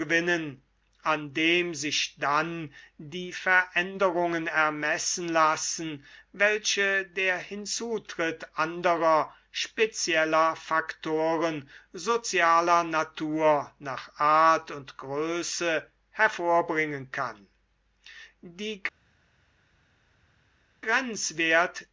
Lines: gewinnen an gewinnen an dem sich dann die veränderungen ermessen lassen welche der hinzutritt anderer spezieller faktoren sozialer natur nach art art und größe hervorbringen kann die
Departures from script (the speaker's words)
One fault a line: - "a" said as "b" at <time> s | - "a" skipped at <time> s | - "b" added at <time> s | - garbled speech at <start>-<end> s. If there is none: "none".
- "gewinnen an" skipped at 1.3 s
- "art" skipped at 14.7 s